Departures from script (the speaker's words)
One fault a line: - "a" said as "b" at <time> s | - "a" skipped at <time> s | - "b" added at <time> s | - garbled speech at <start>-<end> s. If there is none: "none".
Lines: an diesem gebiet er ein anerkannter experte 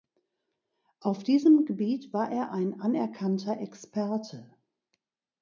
- "an" said as "auf" at 1.0 s
- "war" added at 2.1 s